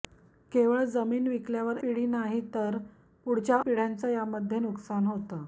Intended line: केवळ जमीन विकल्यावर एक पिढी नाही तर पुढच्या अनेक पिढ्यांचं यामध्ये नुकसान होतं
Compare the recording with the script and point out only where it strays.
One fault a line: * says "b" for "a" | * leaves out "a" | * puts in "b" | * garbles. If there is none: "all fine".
* leaves out "एक"
* leaves out "अनेक"